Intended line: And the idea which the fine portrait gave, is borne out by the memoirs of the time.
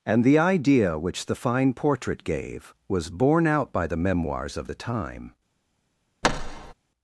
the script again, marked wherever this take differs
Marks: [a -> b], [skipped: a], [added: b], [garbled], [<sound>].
And the idea which the fine portrait gave, [is -> was] borne out by the memoirs of the time. [thud]